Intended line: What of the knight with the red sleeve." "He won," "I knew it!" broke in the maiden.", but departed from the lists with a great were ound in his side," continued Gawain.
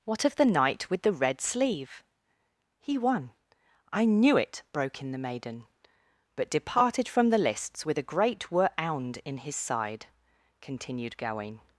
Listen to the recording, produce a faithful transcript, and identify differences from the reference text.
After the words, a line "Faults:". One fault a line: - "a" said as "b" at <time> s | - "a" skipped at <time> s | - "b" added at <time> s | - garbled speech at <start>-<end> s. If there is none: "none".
What of the knight with the red sleeve." "He won," "I knew it!" broke in the maiden.", but departed from the lists with a great were ound in his side," continued Gawain.
Faults:
none